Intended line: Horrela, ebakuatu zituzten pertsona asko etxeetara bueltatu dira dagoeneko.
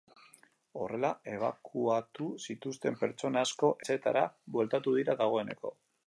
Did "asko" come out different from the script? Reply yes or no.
no